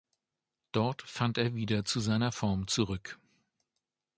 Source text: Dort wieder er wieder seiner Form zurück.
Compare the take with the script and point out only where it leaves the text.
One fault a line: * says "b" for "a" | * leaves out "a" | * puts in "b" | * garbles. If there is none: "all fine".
* says "fand" for "wieder"
* puts in "zu"